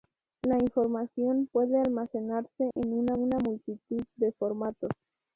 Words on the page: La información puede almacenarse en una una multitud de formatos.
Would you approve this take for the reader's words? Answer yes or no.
yes